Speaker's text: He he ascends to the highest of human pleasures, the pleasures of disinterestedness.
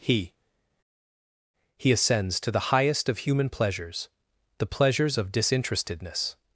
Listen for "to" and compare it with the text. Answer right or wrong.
right